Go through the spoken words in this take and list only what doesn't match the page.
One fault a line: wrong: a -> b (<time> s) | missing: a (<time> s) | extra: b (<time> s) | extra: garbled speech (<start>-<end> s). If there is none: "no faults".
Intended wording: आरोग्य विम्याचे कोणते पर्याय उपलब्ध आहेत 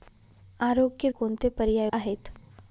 missing: विम्याचे (1.1 s)
missing: उपलब्ध (1.9 s)